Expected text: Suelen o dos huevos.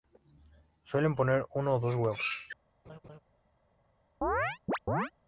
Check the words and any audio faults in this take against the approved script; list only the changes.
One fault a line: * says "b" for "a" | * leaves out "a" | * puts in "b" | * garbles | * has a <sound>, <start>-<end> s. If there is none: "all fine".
* puts in "poner uno"
* has a laugh, 2.8-3.2 s
* has a chirp, 4.2-5.1 s